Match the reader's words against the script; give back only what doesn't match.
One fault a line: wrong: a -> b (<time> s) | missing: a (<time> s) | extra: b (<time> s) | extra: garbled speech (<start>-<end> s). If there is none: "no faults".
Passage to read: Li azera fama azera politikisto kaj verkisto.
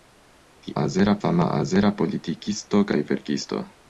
no faults